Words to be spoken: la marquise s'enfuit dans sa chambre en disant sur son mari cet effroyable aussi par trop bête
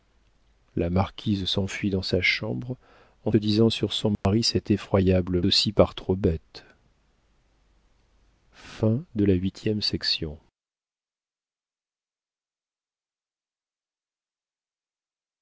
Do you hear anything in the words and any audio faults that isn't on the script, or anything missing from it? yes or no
yes